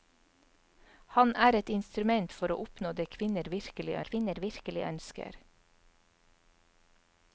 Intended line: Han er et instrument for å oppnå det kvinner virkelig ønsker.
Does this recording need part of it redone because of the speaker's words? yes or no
yes